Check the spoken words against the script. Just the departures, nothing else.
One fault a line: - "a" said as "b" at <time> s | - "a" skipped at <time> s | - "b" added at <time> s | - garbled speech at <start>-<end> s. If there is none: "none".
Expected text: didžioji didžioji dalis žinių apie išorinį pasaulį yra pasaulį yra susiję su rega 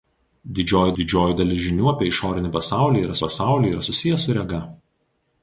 none